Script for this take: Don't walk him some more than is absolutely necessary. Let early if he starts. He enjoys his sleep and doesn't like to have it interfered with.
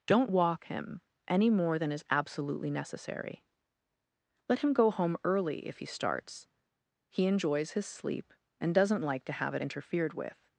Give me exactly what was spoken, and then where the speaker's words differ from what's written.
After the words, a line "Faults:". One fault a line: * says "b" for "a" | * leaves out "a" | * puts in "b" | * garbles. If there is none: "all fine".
Don't walk him any more than is absolutely necessary. Let him go home early if he starts. He enjoys his sleep and doesn't like to have it interfered with.
Faults:
* says "any" for "some"
* puts in "him go home"